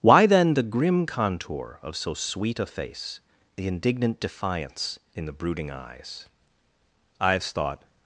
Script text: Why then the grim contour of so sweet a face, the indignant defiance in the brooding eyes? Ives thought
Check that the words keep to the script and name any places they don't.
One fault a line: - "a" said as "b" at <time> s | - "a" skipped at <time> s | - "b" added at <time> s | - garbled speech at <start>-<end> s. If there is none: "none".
none